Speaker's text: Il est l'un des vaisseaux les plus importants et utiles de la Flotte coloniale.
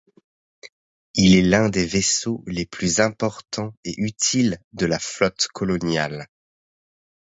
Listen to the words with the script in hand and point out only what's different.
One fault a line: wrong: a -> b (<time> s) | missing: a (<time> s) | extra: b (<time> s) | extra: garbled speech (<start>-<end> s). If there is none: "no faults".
no faults